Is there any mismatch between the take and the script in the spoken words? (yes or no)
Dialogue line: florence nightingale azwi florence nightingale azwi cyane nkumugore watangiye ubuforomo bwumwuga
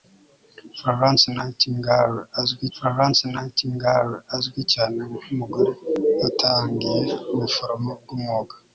no